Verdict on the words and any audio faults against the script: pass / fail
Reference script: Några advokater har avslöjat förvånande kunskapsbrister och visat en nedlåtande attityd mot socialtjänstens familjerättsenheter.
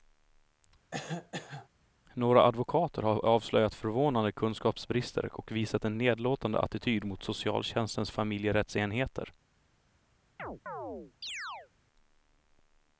fail